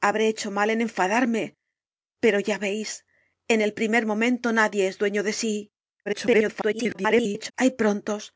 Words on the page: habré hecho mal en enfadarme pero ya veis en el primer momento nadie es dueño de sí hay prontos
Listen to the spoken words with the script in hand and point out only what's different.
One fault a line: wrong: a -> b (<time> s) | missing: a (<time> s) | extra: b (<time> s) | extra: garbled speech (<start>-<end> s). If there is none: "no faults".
extra: garbled speech (6.1-7.5 s)